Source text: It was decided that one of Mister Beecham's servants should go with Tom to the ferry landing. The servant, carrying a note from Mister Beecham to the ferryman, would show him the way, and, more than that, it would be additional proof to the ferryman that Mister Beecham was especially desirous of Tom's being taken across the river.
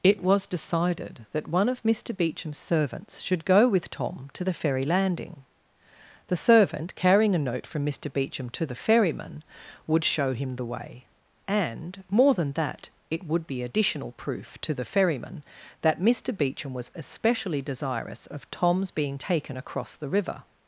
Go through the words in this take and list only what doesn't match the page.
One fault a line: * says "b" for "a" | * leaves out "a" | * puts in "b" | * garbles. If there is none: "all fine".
all fine